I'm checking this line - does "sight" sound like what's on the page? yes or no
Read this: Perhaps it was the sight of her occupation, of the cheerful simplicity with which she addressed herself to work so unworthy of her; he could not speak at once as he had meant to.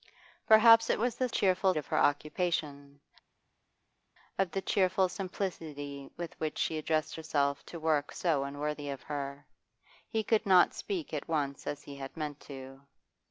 no